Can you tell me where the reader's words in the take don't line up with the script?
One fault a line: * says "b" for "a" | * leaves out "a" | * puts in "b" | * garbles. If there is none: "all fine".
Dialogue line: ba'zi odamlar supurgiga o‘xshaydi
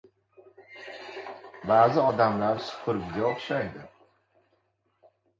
all fine